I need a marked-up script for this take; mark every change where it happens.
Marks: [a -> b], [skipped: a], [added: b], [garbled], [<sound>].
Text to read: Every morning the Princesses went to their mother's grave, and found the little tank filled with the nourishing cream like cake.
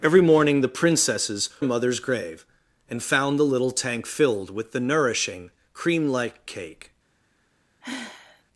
Every morning the Princesses [skipped: went to their] mother's grave, and found the little tank filled with the nourishing cream like cake. [sigh]